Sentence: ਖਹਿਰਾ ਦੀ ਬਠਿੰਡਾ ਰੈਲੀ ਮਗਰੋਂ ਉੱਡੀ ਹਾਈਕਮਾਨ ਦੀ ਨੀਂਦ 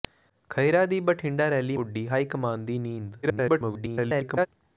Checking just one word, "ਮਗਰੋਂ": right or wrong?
wrong